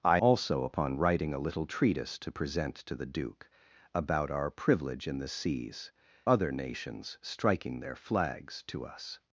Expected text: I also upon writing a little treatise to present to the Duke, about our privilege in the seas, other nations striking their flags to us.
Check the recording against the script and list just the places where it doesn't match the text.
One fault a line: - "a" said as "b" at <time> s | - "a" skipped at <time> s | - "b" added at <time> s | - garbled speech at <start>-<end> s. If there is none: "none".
none